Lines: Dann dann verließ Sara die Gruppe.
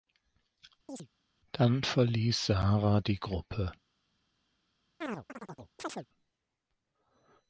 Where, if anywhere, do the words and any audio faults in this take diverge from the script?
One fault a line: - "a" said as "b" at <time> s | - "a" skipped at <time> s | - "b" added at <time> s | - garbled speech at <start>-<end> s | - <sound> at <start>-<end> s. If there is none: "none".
- chirp at 0.9-1.1 s
- "dann" skipped at 1.8 s
- chirp at 5.0-6.1 s